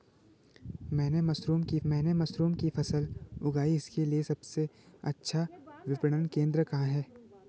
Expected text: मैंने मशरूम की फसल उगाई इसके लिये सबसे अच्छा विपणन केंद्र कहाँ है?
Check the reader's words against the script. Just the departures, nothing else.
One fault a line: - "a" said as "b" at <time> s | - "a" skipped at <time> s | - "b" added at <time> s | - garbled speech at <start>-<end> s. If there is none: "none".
- "मैंने मशरूम की" added at 1.9 s